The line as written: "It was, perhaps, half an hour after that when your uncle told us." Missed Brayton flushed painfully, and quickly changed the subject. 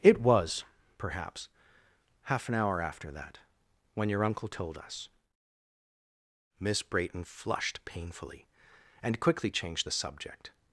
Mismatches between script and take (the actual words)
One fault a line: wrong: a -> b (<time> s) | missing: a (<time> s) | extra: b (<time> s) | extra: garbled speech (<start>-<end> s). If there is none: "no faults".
wrong: Missed -> Miss (6.6 s)